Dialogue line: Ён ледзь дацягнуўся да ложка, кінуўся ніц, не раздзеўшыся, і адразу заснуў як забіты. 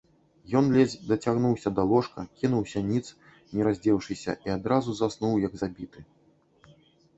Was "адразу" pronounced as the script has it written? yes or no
yes